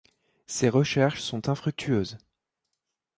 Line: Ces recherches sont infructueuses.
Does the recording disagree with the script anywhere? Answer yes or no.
no